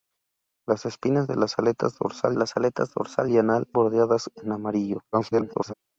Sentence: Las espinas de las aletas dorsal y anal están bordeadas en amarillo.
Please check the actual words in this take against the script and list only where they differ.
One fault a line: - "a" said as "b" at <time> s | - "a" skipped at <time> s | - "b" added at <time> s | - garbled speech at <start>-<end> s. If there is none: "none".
- "las aletas dorsal" added at 2.3 s
- "están" skipped at 3.7 s
- garbled speech at 5.1-5.7 s